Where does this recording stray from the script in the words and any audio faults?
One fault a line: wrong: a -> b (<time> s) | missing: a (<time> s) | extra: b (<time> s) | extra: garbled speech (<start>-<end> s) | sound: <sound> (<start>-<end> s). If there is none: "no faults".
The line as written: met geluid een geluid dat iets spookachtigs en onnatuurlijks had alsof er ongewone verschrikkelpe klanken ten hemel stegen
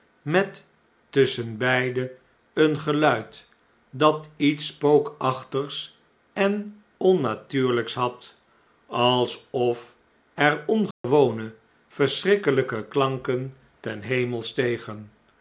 wrong: geluid -> tusschenbeide (1.1 s)
sound: dropout (10.9-11.0 s)